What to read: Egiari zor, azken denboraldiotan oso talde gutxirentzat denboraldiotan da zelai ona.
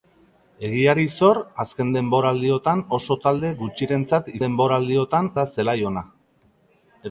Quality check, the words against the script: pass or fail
pass